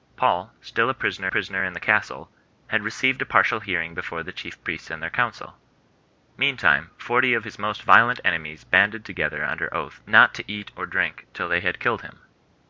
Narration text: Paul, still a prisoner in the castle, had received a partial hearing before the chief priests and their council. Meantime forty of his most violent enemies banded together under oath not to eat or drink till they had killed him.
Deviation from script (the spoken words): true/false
true